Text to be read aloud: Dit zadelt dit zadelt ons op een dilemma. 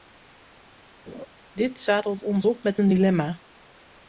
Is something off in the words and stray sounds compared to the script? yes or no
yes